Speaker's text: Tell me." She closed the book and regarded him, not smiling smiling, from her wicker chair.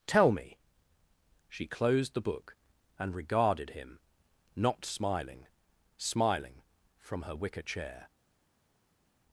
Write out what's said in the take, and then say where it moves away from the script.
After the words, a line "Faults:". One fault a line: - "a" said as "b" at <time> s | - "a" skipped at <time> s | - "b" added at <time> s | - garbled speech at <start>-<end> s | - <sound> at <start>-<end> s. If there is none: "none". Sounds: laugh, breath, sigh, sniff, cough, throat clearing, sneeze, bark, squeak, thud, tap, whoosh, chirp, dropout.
Tell me." She closed the book and regarded him, not smiling smiling, from her wicker chair.
Faults:
none